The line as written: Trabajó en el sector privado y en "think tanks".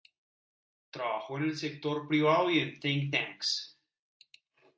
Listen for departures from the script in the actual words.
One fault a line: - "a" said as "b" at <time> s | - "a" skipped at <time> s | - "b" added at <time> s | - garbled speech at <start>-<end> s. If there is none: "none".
none